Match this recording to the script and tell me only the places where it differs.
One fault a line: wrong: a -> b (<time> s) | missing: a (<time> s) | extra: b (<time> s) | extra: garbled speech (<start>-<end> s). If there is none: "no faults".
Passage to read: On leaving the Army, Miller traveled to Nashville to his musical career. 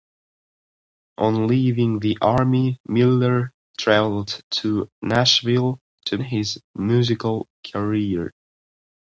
no faults